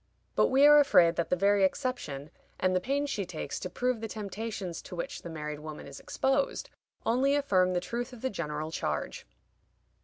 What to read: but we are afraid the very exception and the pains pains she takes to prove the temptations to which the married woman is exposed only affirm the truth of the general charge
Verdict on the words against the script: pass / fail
fail